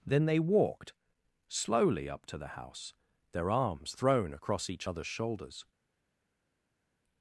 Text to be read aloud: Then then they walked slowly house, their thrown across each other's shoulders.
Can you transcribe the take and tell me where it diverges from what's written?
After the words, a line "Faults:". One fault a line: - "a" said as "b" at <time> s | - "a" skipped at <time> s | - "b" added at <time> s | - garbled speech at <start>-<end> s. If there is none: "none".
Then they walked slowly up to the house, their arms thrown across each other's shoulders.
Faults:
- "then" skipped at 0.2 s
- "up to the" added at 2.1 s
- "arms" added at 3.5 s